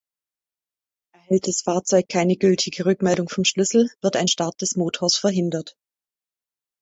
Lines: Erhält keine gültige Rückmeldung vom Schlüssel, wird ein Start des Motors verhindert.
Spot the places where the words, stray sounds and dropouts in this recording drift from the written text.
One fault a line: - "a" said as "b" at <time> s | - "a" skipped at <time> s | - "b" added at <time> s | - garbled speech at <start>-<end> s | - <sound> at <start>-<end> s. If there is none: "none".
- "das Fahrzeug" added at 1.5 s